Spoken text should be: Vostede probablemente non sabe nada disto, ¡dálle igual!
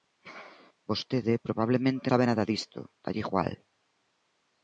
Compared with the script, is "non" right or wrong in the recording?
wrong